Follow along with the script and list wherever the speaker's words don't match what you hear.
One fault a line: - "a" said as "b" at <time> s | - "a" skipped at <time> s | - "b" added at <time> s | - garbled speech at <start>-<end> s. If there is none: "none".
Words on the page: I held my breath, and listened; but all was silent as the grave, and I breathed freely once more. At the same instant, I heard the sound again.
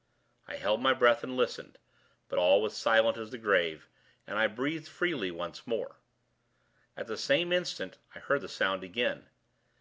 none